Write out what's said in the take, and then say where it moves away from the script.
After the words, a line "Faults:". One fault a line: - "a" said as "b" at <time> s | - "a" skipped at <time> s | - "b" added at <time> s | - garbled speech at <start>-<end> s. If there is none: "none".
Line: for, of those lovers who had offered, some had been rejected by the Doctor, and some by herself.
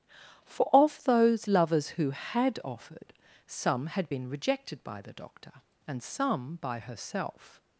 for, of those lovers who had offered, some had been rejected by the Doctor, and some by herself.
Faults:
none